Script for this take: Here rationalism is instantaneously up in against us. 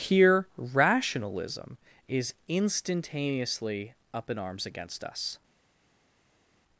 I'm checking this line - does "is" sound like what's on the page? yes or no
yes